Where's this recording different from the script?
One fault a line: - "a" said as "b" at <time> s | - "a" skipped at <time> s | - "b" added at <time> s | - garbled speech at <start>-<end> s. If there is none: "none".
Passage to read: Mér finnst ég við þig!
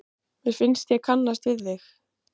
- "kannast" added at 1.1 s